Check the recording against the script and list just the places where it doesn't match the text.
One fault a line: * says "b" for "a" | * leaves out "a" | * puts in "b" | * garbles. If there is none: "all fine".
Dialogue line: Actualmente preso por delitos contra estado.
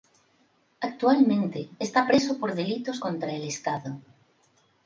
* puts in "está"
* puts in "el"